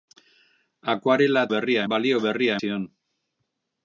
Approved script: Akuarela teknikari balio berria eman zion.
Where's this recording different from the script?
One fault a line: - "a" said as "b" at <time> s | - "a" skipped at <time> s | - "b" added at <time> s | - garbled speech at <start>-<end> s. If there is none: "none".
- "teknikari" said as "berria" at 1.5 s
- "eman" skipped at 2.6 s